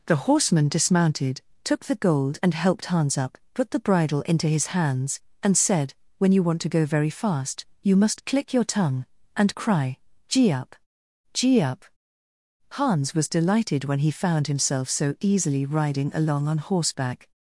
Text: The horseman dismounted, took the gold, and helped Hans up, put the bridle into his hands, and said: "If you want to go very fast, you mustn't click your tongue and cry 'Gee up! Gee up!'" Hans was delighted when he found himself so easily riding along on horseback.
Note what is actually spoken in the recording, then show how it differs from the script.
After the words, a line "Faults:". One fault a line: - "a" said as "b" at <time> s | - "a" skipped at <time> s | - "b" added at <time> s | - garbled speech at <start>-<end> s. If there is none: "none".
The horseman dismounted, took the gold, and helped Hans up, put the bridle into his hands, and said: "When you want to go very fast, you must click your tongue and cry 'Gee up! Gee up!'" Hans was delighted when he found himself so easily riding along on horseback.
Faults:
- "If" said as "When" at 6.2 s
- "mustn't" said as "must" at 8.0 s